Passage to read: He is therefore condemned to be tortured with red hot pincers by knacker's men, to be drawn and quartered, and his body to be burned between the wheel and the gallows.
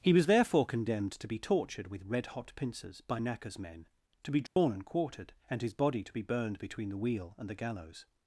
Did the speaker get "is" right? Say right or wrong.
wrong